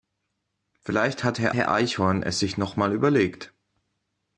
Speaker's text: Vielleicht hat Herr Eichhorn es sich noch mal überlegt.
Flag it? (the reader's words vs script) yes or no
yes